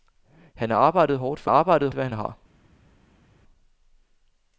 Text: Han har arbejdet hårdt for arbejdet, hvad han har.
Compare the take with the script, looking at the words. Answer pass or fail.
pass